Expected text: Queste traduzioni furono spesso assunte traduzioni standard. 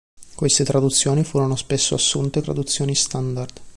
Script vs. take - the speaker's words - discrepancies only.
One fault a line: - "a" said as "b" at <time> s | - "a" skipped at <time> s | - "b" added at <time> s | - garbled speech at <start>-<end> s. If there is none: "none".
none